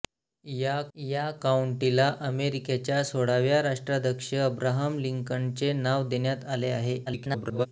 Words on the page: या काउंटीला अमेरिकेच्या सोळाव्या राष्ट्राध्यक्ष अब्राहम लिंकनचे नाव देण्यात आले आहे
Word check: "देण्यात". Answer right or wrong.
right